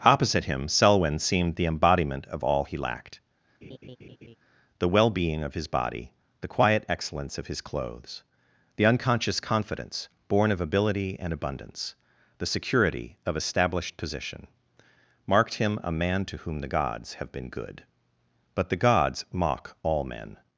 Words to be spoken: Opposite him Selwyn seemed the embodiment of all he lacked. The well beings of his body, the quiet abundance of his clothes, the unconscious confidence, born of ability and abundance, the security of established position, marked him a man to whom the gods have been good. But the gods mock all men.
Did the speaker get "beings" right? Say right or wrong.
wrong